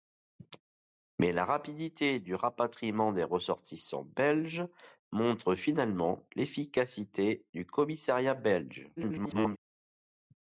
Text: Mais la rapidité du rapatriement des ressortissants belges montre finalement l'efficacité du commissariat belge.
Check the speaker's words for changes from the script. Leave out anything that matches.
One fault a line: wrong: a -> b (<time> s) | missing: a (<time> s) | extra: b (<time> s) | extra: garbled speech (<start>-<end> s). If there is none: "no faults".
extra: garbled speech (9.0-9.6 s)